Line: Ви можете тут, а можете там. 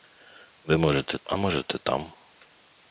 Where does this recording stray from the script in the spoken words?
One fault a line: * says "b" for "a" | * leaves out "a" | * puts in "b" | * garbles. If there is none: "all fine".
* leaves out "тут"